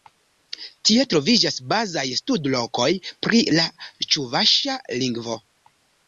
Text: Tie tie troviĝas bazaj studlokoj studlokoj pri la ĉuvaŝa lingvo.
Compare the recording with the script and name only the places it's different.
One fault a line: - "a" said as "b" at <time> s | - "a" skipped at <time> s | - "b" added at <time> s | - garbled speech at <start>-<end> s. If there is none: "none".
- "tie" skipped at 1.0 s
- "studlokoj" skipped at 2.9 s